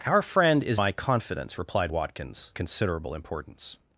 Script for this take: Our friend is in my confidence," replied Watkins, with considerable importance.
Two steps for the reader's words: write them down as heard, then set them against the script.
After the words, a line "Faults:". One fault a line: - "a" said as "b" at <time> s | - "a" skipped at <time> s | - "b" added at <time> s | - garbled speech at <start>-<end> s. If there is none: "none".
Our friend is my confidence," replied Watkins, considerable importance.
Faults:
- "in" skipped at 0.8 s
- "with" skipped at 2.5 s